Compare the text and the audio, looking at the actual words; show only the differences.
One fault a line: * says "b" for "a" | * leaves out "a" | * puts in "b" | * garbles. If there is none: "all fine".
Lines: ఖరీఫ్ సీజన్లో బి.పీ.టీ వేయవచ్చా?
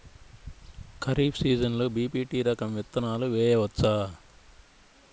* puts in "రకం విత్తనాలు"